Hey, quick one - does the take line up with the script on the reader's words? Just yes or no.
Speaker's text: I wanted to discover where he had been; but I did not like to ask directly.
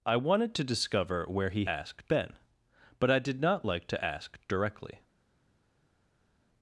no